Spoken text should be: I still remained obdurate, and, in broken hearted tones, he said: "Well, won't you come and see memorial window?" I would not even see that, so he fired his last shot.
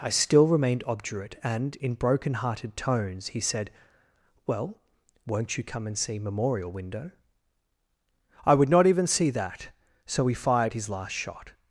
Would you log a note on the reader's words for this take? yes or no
no